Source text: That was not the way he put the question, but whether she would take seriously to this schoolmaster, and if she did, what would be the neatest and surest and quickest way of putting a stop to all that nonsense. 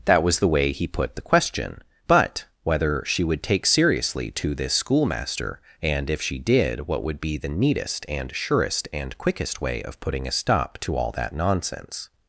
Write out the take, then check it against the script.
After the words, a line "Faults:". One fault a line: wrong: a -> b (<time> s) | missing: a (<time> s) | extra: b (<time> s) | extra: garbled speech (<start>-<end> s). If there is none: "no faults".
That was the way he put the question, but whether she would take seriously to this schoolmaster, and if she did, what would be the neatest and surest and quickest way of putting a stop to all that nonsense.
Faults:
missing: not (0.4 s)